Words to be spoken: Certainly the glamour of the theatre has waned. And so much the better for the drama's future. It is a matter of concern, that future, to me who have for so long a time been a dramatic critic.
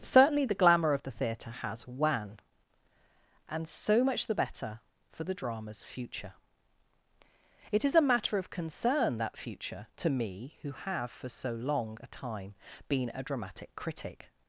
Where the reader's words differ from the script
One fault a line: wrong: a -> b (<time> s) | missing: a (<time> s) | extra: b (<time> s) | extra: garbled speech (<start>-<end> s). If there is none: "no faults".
wrong: waned -> wan (1.9 s)